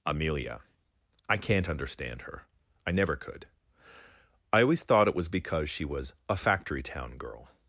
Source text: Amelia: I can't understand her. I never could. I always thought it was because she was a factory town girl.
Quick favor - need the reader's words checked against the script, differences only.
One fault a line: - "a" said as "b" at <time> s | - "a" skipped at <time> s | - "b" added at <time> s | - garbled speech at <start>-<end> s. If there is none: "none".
none